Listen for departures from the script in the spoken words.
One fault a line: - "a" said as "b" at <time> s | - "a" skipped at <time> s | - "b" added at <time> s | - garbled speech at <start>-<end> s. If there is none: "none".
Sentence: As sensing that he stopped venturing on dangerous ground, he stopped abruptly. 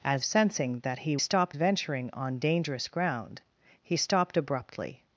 none